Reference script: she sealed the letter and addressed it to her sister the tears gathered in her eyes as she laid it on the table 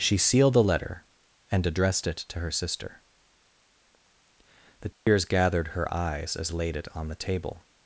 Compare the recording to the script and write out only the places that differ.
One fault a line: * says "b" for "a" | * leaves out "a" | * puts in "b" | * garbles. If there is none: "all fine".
* leaves out "in"
* leaves out "she"